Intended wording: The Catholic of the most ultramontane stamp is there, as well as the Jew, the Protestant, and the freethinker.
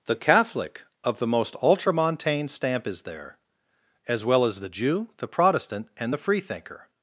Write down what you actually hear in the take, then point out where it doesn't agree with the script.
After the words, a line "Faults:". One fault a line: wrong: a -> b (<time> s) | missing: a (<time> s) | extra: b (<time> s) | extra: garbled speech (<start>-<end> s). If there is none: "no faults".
The Catholic of the most ultramontane stamp is there, as well as the Jew, the Protestant, and the freethinker.
Faults:
no faults